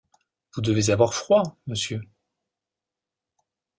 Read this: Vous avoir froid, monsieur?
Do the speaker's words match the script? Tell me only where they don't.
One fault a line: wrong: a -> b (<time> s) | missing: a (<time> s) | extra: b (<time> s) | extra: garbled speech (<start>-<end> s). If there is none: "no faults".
extra: devez (0.6 s)